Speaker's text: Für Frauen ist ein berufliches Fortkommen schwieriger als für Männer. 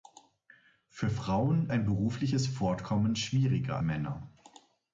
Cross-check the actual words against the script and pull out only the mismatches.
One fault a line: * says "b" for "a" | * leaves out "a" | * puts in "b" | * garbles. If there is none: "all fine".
* leaves out "ist"
* leaves out "als für"